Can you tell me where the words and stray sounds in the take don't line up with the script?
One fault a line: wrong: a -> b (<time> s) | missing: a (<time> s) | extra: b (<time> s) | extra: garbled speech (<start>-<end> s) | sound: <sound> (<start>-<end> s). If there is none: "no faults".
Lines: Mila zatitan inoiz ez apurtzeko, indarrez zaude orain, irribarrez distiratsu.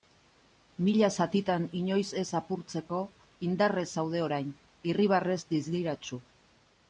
no faults